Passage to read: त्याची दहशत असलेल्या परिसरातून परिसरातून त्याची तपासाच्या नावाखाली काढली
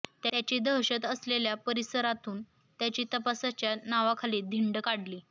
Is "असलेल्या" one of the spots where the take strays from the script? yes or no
no